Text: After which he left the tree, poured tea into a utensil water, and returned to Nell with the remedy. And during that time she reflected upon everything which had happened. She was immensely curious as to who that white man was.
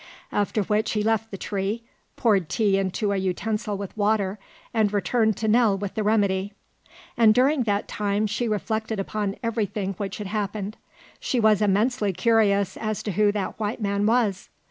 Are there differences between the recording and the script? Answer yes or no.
yes